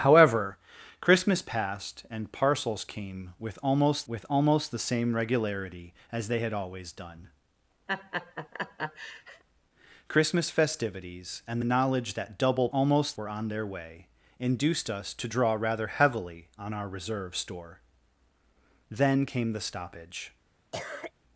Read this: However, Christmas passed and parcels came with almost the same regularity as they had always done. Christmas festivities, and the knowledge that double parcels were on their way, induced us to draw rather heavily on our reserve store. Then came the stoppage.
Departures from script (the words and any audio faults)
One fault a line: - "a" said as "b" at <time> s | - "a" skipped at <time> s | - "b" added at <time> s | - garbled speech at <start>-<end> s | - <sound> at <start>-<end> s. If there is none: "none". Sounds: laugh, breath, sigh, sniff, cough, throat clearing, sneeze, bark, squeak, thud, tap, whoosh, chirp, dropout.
- "with almost" added at 4.0 s
- laugh at 7.9-9.4 s
- "parcels" said as "almost" at 12.7 s
- cough at 20.7-21.1 s